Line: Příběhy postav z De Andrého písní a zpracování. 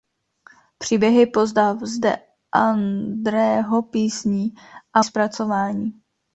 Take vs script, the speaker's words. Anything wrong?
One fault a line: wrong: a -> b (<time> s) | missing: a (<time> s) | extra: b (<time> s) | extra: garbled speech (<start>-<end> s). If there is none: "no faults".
no faults